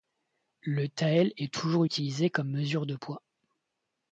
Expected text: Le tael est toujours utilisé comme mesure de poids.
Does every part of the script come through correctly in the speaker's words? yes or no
yes